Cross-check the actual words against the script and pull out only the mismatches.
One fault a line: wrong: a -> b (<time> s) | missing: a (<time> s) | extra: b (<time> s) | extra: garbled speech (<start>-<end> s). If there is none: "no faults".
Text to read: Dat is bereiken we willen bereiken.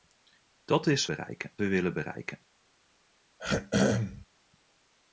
no faults